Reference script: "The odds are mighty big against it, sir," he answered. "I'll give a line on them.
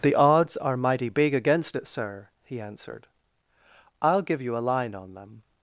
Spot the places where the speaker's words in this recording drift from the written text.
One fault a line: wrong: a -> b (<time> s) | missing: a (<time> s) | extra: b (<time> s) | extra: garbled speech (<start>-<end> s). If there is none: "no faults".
extra: you (4.4 s)